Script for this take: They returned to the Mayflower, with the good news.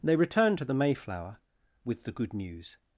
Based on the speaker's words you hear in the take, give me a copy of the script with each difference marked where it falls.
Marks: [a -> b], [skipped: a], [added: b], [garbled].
They returned to the Mayflower, with the good news.